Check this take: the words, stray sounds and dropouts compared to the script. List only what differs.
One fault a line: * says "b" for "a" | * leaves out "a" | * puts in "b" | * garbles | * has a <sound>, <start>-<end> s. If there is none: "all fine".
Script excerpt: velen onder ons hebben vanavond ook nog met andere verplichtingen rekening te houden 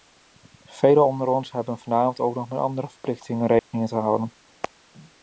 * has a dropout, 3.6-3.7 s